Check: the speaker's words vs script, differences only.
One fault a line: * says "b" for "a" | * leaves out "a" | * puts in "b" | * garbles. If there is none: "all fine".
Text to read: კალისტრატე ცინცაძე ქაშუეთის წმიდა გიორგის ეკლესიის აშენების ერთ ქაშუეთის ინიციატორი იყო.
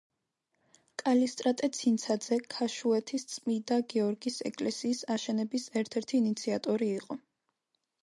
* says "ერთი" for "ქაშუეთის"